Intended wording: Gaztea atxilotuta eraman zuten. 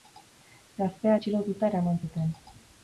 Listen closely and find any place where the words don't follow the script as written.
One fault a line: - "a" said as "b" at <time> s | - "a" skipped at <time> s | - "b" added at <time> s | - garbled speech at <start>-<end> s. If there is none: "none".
none